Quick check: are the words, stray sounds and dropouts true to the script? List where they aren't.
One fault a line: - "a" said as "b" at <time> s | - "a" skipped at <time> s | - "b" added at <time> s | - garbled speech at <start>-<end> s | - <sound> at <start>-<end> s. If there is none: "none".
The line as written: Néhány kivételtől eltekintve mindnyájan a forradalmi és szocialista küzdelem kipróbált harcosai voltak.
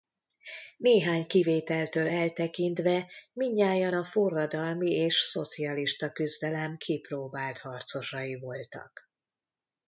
none